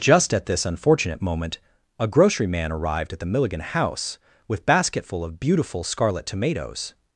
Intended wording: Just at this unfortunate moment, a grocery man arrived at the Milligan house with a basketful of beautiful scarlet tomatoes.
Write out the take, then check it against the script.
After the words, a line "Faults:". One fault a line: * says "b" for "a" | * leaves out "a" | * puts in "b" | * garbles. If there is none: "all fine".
Just at this unfortunate moment, a grocery man arrived at the Milligan house with basketful of beautiful scarlet tomatoes.
Faults:
* leaves out "a"